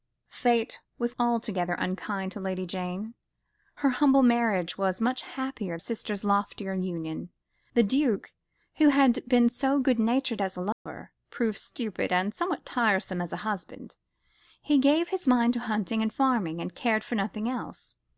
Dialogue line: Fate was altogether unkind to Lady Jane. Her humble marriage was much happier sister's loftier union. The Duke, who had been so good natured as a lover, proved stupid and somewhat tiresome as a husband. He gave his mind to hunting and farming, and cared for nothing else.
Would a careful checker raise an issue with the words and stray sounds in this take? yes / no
yes